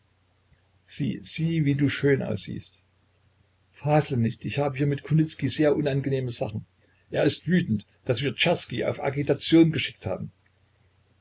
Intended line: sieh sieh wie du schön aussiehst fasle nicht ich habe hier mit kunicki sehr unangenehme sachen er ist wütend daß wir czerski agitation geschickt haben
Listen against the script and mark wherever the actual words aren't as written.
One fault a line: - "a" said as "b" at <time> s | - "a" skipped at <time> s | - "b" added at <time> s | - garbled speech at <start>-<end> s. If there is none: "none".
- "auf" added at 8.8 s